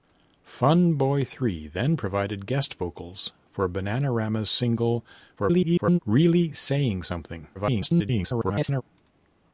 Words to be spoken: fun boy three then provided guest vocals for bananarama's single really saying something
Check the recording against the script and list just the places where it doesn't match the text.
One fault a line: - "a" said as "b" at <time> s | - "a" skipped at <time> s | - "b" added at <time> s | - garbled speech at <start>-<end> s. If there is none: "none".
- garbled speech at 5.4-6.0 s
- garbled speech at 7.5-8.8 s